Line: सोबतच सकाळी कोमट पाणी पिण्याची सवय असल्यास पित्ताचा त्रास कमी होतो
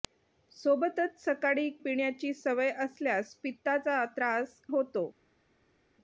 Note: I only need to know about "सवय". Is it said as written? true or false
true